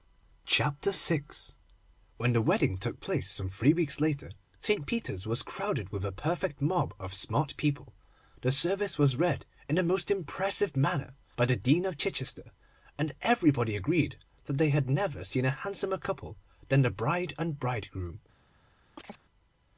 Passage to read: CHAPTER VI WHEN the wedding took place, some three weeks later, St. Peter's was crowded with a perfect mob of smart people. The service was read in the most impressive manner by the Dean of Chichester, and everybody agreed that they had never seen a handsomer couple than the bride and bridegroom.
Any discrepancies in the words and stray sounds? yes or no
yes